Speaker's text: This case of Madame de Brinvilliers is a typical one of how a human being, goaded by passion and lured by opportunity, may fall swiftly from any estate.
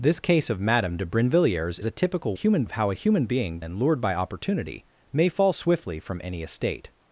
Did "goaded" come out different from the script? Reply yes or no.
yes